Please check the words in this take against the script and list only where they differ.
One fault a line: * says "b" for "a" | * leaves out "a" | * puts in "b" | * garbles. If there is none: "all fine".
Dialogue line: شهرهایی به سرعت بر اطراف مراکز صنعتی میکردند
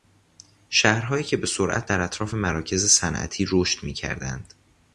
* puts in "که"
* says "در" for "بر"
* puts in "رشد"